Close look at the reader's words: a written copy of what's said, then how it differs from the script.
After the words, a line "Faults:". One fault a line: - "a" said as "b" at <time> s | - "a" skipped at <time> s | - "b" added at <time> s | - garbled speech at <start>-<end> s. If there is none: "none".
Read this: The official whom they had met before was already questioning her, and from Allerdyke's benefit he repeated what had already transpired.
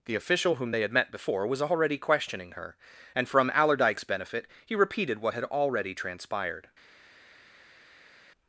The official whom they had met before was already questioning her, and from Allerdyke's benefit he repeated what had already transpired.
Faults:
none